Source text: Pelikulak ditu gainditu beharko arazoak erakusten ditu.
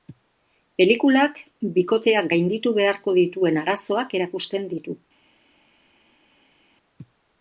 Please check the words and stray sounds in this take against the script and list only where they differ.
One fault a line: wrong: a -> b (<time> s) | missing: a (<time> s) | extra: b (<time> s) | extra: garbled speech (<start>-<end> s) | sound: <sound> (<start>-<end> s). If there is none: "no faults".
wrong: ditu -> bikoteak (1.8 s)
extra: dituen (3.2 s)